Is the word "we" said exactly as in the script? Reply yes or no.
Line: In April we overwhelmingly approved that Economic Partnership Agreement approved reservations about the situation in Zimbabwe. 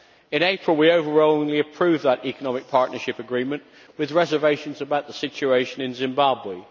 yes